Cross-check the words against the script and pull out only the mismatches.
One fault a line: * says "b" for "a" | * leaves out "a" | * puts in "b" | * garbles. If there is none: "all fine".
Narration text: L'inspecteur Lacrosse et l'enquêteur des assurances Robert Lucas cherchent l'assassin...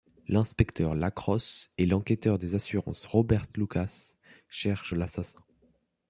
all fine